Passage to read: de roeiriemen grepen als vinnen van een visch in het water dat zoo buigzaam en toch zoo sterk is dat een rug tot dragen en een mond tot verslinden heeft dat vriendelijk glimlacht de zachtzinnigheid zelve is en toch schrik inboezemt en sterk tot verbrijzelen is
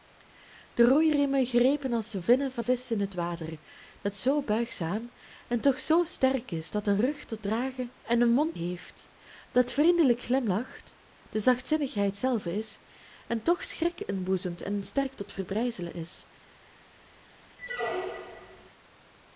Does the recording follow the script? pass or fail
fail